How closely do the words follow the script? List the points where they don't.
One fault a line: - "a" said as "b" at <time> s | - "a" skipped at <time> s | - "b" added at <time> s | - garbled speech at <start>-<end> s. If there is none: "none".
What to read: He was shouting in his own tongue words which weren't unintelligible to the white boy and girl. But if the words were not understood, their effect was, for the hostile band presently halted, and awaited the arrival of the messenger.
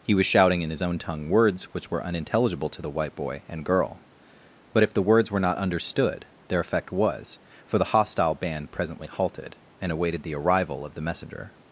- "weren't" said as "were" at 1.9 s